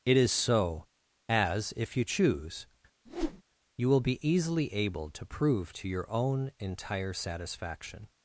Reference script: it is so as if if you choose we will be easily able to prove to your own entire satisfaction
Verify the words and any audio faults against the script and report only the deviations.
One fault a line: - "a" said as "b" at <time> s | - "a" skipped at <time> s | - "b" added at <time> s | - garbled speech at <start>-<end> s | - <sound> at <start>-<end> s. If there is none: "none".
- "if" skipped at 1.9 s
- whoosh at 3.1-3.4 s
- "we" said as "you" at 3.8 s